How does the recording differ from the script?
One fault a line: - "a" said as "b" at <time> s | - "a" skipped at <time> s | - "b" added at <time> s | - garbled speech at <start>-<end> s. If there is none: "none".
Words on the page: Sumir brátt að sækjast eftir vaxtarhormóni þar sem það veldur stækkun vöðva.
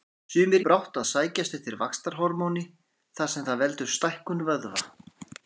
none